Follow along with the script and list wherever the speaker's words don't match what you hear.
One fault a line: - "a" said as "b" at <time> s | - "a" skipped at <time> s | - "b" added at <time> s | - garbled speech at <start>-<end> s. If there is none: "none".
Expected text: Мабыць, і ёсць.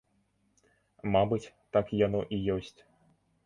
- "так яно" added at 1.8 s